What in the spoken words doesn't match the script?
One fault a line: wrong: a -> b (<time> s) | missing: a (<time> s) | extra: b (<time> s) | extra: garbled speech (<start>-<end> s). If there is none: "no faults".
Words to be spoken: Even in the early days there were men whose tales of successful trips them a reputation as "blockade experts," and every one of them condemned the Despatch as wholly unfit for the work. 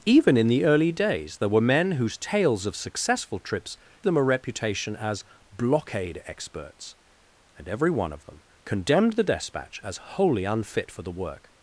no faults